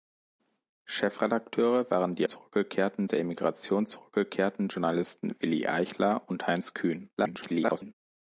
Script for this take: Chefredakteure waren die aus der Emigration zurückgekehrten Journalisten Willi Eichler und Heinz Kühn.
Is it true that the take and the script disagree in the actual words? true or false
true